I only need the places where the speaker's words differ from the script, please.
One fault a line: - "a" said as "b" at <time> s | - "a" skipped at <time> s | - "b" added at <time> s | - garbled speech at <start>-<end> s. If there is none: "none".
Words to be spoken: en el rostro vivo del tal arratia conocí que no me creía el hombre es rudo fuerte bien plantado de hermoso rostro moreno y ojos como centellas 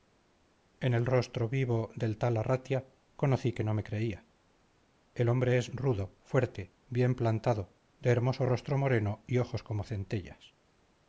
none